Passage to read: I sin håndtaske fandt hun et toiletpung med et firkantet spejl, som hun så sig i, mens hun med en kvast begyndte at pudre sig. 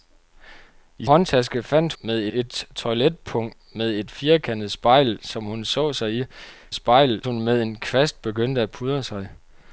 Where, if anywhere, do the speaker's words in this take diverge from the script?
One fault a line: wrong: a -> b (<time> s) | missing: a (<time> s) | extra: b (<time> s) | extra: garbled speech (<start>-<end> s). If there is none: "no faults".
missing: sin (1.1 s)
wrong: hun -> med (2.0 s)
wrong: mens -> spejl (6.7 s)